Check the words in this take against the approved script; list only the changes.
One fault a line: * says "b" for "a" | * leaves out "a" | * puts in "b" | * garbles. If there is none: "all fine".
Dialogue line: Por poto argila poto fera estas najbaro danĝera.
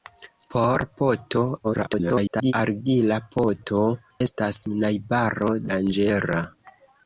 * garbles
* leaves out "fera"